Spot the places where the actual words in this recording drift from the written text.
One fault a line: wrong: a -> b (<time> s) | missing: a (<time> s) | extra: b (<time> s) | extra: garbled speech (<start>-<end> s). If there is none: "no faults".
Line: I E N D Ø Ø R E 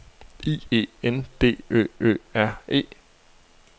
no faults